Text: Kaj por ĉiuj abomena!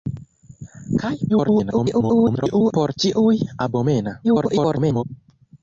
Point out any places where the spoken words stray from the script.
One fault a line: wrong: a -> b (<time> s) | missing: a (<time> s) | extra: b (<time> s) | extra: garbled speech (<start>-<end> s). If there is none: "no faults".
extra: garbled speech (1.3-2.7 s)
extra: garbled speech (4.2-5.0 s)